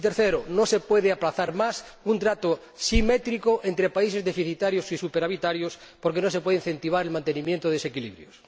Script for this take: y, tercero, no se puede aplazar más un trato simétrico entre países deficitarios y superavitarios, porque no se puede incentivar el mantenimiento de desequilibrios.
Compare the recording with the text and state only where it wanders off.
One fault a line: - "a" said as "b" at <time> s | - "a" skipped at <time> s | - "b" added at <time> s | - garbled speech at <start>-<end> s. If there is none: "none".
none